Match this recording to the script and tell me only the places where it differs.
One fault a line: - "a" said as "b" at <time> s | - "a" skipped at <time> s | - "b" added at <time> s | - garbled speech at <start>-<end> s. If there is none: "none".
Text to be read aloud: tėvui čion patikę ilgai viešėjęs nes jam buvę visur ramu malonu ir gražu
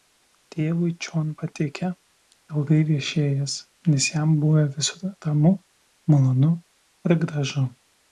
none